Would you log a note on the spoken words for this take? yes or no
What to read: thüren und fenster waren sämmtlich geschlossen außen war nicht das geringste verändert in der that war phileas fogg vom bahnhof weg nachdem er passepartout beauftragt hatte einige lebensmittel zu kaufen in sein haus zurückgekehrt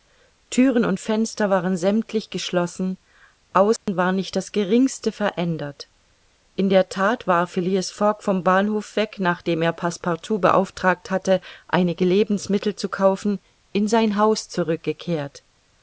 no